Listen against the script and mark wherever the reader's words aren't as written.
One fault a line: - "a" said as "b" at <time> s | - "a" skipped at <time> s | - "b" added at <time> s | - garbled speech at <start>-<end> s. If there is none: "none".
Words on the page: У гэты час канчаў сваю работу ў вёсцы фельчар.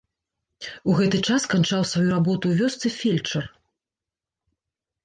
none